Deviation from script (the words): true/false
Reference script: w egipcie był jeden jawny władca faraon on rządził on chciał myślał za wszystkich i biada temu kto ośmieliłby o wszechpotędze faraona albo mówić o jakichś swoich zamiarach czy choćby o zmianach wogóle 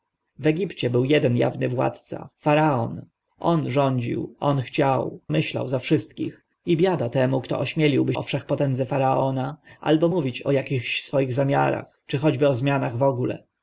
false